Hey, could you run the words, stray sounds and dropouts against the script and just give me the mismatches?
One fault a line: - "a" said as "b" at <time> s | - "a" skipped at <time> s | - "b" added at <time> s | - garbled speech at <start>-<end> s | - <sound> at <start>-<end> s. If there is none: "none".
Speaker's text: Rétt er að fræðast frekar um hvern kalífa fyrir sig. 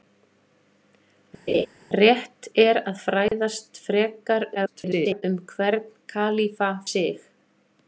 - laugh at 1.5-1.7 s
- dropout at 3.3-3.3 s
- garbled speech at 4.6-5.2 s
- "fyrir" skipped at 6.7 s